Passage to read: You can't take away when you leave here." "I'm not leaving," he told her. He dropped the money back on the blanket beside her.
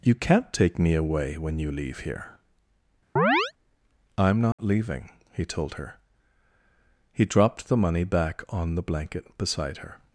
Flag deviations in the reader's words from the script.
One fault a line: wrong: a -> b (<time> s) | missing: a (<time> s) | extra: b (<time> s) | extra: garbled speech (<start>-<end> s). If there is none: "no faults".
extra: me (0.8 s)